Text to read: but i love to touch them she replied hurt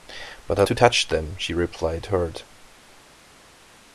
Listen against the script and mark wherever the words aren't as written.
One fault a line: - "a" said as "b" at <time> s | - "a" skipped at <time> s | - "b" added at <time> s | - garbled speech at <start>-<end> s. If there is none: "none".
- "love" skipped at 0.6 s